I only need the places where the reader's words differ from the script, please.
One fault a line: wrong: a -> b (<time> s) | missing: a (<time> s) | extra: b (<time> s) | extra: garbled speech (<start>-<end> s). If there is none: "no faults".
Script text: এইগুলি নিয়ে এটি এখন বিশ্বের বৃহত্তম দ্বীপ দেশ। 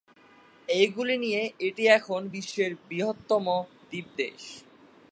no faults